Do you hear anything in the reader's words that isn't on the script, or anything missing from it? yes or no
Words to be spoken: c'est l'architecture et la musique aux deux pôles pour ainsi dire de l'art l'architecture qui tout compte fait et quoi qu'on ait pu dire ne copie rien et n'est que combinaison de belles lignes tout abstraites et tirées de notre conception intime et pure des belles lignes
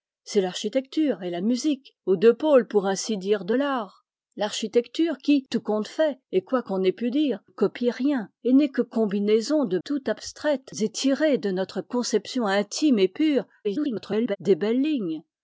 yes